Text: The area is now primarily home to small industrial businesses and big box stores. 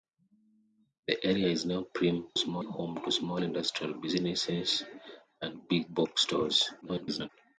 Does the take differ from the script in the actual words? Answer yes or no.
yes